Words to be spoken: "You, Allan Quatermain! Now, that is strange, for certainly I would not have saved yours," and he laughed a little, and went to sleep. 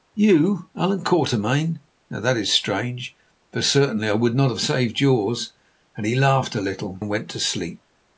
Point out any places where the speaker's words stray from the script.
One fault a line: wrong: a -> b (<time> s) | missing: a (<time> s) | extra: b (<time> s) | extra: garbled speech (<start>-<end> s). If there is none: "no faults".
no faults